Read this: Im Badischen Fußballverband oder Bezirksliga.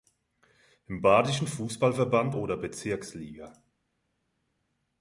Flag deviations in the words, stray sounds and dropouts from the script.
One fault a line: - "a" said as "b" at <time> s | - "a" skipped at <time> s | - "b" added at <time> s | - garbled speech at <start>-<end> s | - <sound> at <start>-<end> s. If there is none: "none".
none